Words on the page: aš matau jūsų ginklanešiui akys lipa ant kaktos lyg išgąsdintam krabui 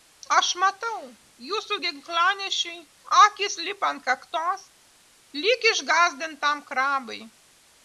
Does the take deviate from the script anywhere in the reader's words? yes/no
no